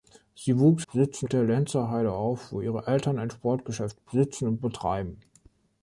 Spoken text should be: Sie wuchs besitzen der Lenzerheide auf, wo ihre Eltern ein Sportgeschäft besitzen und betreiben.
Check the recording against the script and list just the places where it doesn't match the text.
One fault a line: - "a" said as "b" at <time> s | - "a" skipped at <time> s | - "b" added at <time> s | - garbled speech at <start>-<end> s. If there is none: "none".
none